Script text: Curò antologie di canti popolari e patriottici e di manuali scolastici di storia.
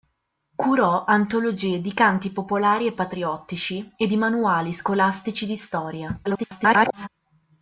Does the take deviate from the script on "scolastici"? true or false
false